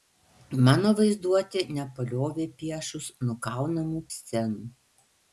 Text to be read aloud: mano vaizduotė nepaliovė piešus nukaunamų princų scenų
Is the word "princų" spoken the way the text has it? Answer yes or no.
no